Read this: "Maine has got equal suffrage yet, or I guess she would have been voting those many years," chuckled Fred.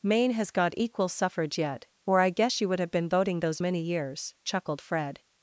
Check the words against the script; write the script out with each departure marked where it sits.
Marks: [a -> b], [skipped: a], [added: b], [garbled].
"Maine has got equal suffrage yet, or I guess she would have been voting those many years," chuckled Fred.